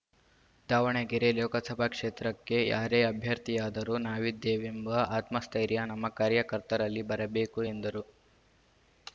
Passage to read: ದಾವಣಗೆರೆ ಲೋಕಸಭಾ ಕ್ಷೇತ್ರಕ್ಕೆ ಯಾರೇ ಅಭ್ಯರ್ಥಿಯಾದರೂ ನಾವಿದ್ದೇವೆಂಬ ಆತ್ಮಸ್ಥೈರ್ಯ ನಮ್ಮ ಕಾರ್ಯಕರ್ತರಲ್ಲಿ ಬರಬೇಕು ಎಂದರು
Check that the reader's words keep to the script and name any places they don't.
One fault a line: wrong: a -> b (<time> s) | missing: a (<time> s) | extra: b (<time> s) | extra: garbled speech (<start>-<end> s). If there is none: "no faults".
no faults